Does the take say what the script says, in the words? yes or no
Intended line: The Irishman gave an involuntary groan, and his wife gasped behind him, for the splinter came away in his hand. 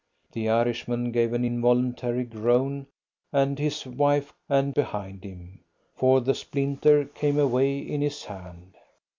no